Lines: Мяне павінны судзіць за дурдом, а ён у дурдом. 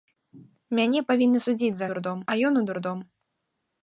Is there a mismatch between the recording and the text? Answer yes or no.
no